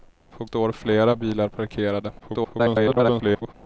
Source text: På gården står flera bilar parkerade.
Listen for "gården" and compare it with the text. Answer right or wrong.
wrong